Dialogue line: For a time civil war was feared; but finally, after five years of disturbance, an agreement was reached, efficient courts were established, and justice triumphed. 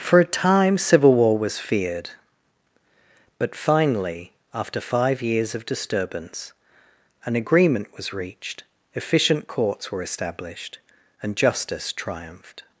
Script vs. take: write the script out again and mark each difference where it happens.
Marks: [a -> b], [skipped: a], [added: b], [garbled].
For a time civil war was feared; but finally, after five years of disturbance, an agreement was reached, efficient courts were established, and justice triumphed.